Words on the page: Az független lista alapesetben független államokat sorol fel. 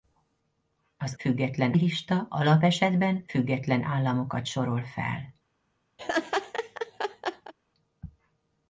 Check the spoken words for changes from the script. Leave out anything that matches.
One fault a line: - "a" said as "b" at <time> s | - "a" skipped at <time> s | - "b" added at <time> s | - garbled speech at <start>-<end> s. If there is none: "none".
none